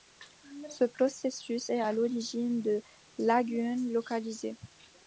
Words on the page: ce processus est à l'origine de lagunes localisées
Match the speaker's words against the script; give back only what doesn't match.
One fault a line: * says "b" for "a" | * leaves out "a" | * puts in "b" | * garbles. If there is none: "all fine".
all fine